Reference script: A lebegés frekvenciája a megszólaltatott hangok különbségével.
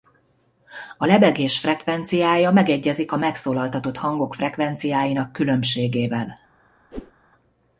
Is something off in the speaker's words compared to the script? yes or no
yes